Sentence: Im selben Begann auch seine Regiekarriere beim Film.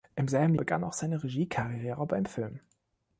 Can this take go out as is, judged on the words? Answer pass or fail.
pass